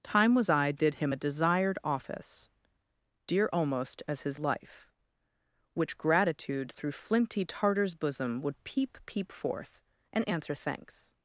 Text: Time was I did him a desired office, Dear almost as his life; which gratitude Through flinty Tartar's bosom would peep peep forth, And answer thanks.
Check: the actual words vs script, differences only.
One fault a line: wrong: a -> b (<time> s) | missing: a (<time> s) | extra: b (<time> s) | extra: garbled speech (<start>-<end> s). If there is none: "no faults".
no faults